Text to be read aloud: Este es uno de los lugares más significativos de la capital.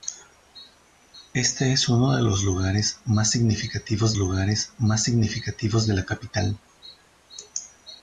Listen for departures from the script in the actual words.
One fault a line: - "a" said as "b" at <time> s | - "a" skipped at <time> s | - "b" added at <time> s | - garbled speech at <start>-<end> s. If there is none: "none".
- "lugares más significativos" added at 4.2 s